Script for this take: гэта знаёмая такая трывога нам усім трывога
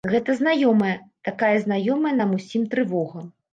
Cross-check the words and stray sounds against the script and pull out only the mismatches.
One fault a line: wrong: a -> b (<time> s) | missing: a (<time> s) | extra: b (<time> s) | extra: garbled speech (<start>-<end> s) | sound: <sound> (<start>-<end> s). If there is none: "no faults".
wrong: трывога -> знаёмая (1.7 s)